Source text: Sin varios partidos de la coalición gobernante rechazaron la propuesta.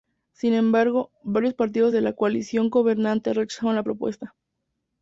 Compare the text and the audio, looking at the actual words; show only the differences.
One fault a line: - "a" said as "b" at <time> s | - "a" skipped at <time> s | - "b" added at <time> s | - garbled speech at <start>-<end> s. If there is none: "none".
- "embargo" added at 0.6 s